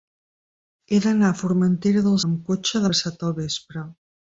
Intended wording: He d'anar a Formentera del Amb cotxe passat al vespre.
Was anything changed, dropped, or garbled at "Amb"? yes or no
no